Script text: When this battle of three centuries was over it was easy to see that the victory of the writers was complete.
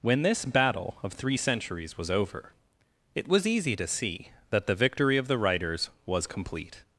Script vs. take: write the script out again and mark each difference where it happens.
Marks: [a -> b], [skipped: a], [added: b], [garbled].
When this battle of three centuries was over it was easy to see that the victory of the writers was complete.